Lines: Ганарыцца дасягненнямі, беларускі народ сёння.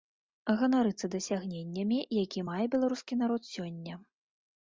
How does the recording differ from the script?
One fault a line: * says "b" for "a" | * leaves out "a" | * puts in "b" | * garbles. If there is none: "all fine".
* puts in "які мае"